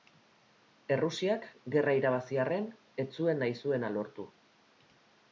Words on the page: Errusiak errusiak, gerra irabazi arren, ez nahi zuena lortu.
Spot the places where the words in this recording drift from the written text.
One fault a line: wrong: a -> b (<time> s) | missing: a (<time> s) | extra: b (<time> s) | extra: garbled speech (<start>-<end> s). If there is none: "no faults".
missing: errusiak (1.4 s)
extra: zuen (3.2 s)